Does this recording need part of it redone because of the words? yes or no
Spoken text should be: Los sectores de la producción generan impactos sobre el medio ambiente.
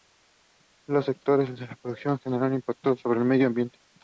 no